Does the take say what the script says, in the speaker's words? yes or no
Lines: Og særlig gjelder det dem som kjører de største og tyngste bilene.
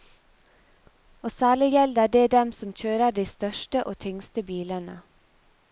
yes